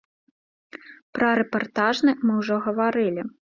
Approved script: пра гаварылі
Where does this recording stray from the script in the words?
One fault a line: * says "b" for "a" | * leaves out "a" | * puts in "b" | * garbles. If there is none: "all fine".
* puts in "рэпартажны мы ўжо"